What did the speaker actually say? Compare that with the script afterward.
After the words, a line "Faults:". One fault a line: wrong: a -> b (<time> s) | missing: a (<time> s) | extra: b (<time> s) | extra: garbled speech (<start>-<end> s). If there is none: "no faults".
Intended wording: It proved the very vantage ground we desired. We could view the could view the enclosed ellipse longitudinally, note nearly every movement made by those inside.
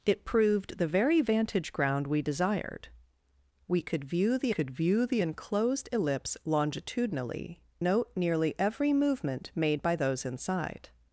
It proved the very vantage ground we desired. We could view the could view the enclosed ellipse longitudinally, note nearly every movement made by those inside.
Faults:
no faults